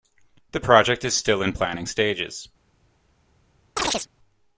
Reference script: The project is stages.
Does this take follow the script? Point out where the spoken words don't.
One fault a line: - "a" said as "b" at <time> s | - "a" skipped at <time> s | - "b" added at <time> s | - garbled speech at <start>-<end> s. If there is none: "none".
- "still in planning" added at 1.1 s